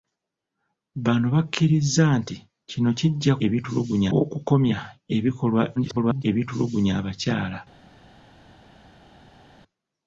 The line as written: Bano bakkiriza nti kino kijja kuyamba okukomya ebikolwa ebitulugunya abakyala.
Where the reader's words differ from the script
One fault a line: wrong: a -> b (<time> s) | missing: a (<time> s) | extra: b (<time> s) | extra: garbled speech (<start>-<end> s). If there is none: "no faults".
wrong: kuyamba -> ebitulugunya (3.4 s)
extra: garbled speech (5.8-6.2 s)